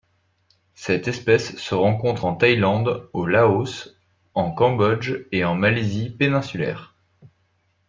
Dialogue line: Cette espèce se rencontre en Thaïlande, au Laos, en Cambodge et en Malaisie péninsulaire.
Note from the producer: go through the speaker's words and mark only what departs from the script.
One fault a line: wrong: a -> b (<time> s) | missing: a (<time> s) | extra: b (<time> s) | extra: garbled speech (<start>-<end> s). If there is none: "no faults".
no faults